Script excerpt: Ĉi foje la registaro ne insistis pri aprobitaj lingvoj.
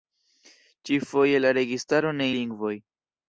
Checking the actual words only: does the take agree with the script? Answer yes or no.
no